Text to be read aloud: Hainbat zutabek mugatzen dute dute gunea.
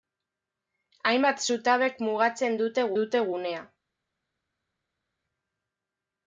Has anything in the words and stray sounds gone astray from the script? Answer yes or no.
no